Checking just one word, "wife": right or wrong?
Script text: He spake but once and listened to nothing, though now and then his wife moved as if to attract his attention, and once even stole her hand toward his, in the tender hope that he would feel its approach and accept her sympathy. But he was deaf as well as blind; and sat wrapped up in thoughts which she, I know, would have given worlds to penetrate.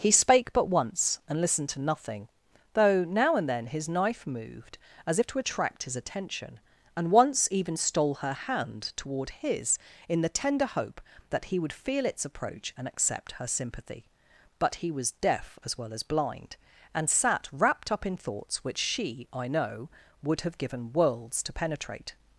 wrong